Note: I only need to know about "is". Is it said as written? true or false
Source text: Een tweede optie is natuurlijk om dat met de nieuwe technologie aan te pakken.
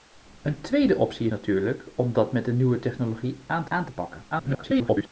false